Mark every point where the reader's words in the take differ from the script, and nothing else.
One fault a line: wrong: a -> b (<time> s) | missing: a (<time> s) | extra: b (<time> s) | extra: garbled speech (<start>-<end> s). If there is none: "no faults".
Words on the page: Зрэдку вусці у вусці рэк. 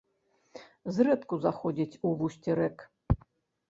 wrong: вусці -> заходзіць (1.4 s)